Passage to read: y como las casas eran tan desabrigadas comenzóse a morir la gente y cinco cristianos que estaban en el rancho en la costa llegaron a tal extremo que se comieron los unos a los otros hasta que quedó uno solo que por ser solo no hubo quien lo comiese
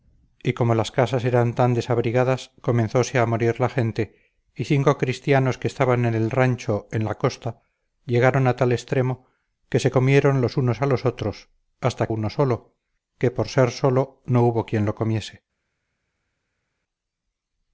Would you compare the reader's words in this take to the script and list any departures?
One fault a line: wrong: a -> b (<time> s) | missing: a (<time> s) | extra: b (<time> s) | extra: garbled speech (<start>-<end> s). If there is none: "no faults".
missing: que quedó (12.1 s)